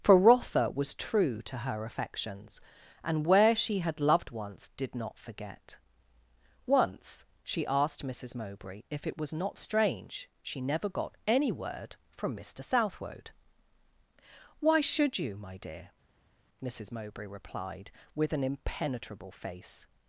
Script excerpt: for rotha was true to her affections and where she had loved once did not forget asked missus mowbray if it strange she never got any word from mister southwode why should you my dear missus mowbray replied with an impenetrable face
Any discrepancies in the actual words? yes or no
yes